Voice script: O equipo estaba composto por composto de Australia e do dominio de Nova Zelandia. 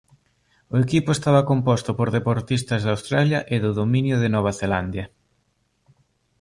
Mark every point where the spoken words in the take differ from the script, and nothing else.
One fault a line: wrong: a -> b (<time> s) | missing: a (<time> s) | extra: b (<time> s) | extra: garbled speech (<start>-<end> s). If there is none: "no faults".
wrong: composto -> deportistas (2.2 s)